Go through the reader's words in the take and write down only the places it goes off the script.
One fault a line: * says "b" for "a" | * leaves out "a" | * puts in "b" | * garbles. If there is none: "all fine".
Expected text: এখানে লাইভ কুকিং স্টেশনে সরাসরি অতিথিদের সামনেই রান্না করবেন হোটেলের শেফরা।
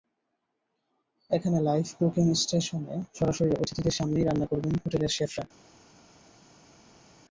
all fine